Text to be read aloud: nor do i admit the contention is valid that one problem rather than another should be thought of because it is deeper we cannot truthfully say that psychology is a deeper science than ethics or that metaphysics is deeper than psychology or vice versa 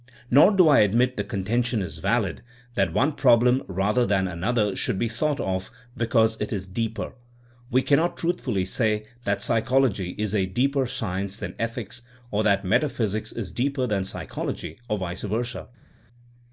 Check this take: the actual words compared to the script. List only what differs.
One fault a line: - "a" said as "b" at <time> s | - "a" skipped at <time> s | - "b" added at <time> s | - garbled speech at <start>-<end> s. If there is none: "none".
none